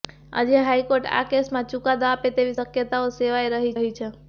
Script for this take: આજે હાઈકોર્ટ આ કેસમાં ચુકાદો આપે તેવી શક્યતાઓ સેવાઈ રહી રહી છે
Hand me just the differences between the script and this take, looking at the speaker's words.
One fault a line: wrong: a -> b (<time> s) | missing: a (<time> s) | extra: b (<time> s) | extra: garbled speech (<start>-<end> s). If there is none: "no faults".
no faults